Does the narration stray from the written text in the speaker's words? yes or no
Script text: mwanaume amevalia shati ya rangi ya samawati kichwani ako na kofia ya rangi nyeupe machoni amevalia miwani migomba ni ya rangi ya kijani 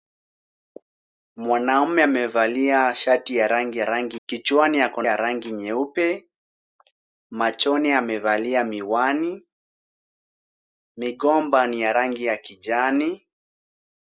yes